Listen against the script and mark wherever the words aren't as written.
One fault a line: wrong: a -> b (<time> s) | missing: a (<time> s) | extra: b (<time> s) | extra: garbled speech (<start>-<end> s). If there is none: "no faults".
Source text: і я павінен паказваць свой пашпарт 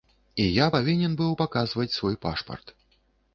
extra: быў (1.2 s)